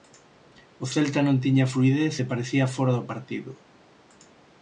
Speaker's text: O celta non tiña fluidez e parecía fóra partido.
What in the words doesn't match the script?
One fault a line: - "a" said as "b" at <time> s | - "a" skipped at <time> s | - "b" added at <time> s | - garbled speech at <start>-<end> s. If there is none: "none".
- "do" added at 3.0 s